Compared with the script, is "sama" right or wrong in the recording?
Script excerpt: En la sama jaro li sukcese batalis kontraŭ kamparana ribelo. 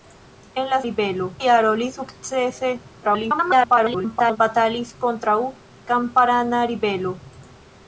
wrong